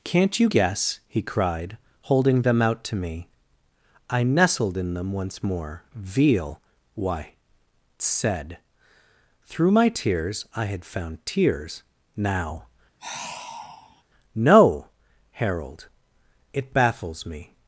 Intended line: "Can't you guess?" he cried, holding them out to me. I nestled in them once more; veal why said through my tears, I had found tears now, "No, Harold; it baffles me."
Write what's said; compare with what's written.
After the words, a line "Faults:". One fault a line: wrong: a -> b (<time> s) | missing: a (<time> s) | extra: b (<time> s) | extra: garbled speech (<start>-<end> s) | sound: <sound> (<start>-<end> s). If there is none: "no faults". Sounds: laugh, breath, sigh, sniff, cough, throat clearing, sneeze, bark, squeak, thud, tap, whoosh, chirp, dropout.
"Can't you guess?" he cried, holding them out to me. I nestled in them once more; veal why said through my tears, I had found tears now, "No, Harold; it baffles me."
Faults:
sound: sigh (13.0-14.0 s)